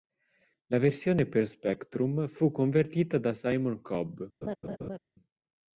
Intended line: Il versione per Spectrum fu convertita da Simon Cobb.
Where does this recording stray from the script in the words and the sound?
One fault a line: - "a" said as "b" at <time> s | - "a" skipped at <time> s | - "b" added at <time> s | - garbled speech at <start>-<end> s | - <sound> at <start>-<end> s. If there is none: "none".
- "Il" said as "La" at 0.7 s
- laugh at 4.4-5.0 s